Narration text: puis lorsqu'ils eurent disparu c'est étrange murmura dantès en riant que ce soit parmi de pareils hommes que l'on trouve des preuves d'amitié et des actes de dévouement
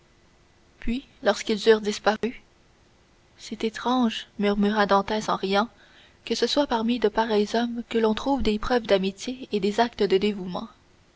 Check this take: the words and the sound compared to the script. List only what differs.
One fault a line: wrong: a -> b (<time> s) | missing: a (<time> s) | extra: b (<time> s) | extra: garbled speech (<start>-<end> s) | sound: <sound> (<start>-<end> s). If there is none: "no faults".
sound: dropout (2.2-2.2 s)